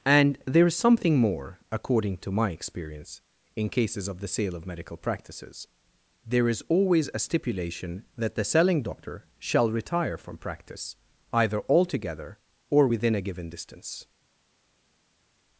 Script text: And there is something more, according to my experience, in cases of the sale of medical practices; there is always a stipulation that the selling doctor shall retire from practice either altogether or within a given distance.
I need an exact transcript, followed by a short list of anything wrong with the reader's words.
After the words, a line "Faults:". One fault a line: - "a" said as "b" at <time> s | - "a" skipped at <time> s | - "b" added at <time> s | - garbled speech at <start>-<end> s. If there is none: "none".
And there is something more, according to my experience, in cases of the sale of medical practices; there is always a stipulation that the selling doctor shall retire from practice either altogether or within a given distance.
Faults:
none